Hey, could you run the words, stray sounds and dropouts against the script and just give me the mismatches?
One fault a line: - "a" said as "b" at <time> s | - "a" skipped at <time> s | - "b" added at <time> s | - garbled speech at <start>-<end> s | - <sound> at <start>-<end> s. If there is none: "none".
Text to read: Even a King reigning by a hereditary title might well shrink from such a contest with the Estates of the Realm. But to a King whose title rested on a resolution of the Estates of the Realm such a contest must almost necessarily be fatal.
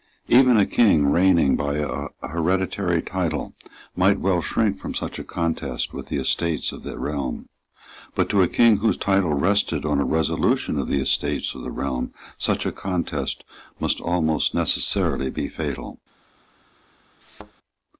- thud at 17.2-17.5 s